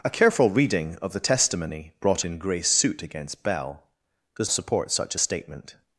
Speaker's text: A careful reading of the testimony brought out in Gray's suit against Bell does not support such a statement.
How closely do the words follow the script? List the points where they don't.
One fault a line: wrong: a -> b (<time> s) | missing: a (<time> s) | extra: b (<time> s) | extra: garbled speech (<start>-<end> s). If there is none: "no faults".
missing: out (2.2 s)
missing: not (4.5 s)